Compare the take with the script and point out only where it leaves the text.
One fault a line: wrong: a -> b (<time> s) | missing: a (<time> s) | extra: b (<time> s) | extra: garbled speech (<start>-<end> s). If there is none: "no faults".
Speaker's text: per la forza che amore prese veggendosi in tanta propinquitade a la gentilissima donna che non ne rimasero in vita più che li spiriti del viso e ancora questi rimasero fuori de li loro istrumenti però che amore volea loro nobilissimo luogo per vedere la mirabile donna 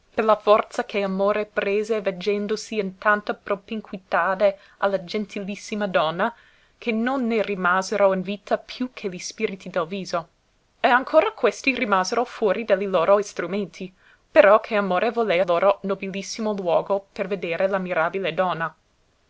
no faults